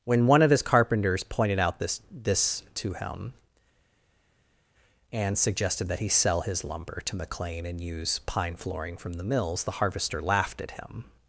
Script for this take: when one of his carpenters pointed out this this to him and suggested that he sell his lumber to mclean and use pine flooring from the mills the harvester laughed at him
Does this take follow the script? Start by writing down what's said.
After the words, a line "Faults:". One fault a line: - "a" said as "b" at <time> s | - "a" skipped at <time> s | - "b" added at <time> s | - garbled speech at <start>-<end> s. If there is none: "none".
when one of his carpenters pointed out this this to him and suggested that he sell his lumber to mclean and use pine flooring from the mills the harvester laughed at him
Faults:
none